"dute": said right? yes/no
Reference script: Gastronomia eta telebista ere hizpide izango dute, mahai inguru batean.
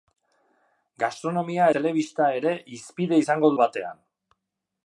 no